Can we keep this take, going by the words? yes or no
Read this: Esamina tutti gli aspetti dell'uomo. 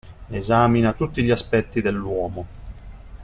yes